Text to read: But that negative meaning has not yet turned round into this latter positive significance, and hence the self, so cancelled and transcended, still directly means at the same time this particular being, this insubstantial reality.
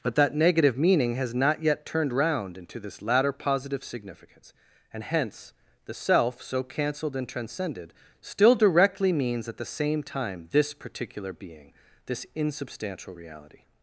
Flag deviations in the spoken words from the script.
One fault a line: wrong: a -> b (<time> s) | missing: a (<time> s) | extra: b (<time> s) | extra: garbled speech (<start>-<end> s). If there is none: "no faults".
no faults